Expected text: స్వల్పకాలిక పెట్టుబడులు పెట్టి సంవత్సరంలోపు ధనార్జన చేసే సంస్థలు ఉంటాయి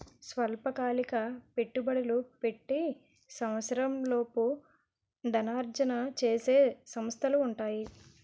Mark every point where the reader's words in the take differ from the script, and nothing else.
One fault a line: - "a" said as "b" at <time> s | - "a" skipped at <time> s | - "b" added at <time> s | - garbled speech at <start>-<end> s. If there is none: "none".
none